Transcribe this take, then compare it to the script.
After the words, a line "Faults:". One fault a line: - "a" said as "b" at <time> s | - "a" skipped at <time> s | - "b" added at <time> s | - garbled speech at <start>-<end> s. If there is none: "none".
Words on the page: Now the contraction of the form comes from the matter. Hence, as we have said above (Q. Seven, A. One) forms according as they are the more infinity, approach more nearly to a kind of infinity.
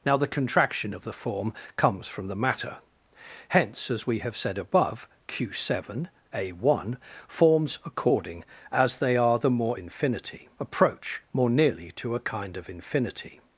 Now the contraction of the form comes from the matter. Hence, as we have said above (Q. Seven, A. One) forms according as they are the more infinity, approach more nearly to a kind of infinity.
Faults:
none